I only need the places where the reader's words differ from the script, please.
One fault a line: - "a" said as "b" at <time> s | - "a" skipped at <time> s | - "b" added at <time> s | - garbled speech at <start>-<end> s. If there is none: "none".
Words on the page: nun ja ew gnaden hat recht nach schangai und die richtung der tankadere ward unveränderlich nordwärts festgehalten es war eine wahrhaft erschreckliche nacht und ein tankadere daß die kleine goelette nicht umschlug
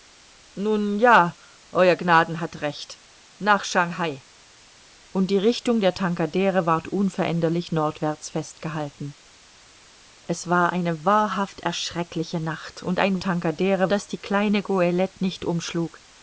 none